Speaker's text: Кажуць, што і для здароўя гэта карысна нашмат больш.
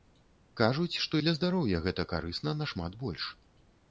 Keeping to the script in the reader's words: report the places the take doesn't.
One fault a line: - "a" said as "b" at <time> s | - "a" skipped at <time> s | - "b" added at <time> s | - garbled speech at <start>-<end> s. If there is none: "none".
- "і" skipped at 1.2 s